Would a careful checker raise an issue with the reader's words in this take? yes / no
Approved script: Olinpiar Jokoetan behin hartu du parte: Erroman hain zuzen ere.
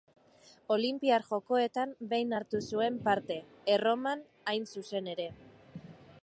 yes